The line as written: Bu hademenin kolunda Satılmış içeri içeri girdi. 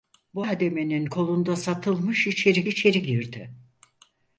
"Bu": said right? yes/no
yes